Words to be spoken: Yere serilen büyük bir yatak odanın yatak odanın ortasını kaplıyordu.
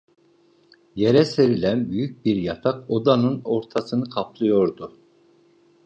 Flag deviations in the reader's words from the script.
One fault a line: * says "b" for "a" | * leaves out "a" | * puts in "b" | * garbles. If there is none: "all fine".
* leaves out "yatak odanın"